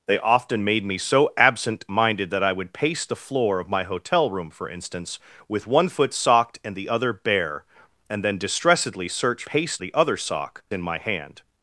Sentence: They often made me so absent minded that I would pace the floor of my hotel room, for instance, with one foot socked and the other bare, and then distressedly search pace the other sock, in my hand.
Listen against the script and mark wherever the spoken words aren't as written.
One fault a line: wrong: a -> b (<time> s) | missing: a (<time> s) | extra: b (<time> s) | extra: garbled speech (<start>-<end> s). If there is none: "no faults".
no faults